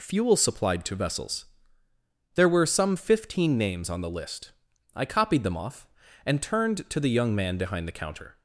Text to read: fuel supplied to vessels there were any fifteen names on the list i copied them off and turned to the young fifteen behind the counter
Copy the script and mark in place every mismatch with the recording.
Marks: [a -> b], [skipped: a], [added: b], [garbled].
fuel supplied to vessels there were [any -> some] fifteen names on the list i copied them off and turned to the young [fifteen -> man] behind the counter